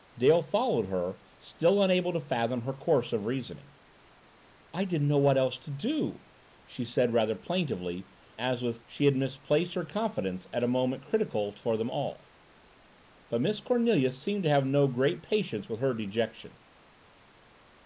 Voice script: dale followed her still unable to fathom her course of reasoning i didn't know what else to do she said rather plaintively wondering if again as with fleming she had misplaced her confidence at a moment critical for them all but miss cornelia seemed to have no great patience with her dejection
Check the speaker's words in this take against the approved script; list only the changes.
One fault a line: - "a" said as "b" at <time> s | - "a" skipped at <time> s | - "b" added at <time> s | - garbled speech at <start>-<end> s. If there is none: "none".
- "wondering if again" skipped at 8.1 s
- "fleming" skipped at 8.8 s